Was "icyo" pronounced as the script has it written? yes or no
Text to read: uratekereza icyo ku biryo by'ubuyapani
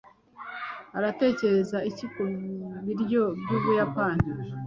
no